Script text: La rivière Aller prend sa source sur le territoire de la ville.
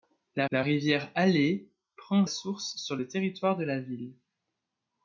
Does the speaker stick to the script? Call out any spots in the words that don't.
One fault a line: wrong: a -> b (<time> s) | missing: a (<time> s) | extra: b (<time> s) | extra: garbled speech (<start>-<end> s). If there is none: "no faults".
extra: la (0.5 s)
missing: sa (2.3 s)